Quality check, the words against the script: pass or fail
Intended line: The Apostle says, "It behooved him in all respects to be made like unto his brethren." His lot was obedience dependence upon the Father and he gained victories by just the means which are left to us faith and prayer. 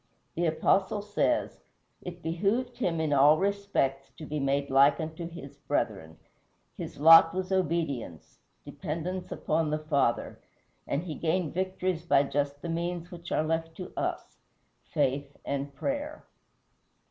pass